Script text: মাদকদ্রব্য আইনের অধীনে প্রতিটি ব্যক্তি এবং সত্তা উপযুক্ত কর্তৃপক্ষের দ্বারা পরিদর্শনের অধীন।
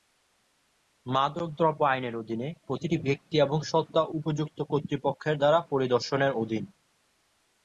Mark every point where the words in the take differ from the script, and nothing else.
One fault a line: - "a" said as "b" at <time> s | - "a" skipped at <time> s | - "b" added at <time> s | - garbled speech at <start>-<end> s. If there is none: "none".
none